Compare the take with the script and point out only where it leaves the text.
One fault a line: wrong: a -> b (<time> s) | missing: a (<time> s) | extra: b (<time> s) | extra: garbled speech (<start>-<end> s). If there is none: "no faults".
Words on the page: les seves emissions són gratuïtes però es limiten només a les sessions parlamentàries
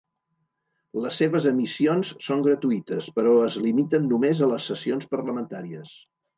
no faults